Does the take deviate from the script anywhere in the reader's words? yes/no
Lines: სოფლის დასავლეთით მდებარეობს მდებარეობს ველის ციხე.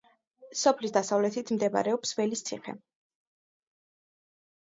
yes